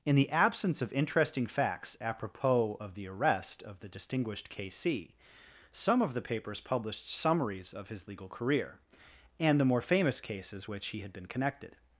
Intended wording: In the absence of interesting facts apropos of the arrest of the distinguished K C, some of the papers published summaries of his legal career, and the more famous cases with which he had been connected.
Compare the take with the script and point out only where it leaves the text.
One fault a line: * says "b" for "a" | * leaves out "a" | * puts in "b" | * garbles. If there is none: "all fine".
* leaves out "with"